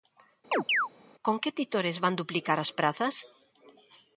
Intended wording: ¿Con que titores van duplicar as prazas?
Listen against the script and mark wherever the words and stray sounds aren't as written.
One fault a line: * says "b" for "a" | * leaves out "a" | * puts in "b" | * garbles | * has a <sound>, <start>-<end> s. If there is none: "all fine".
* has a chirp, 0.5-0.9 s